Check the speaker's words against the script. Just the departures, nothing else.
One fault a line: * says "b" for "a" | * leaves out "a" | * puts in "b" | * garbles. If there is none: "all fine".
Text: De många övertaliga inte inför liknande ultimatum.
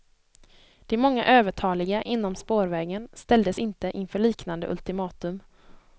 * puts in "inom spårvägen ställdes"